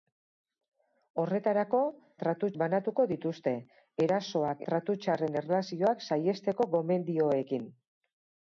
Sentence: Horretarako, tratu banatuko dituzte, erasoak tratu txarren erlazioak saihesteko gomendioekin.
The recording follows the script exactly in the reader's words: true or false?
true